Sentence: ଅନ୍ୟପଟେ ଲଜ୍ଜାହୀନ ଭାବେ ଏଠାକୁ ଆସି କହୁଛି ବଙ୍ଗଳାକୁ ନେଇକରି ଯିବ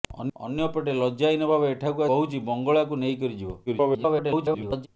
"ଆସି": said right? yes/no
no